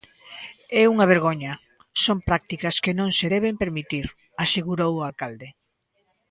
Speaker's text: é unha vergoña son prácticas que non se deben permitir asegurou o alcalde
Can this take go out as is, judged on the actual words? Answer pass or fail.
pass